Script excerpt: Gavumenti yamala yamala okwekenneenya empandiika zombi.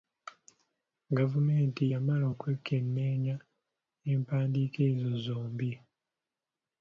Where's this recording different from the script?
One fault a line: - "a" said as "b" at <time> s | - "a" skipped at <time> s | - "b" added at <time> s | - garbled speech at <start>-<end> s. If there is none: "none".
- "yamala" skipped at 2.3 s
- "ezo" added at 4.9 s